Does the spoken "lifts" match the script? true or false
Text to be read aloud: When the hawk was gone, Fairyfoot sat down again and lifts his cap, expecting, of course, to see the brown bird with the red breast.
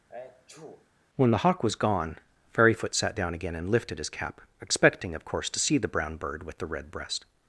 false